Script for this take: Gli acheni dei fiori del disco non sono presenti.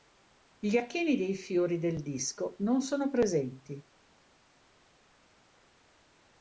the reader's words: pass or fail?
pass